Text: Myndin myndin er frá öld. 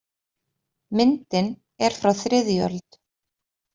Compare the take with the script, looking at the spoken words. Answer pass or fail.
fail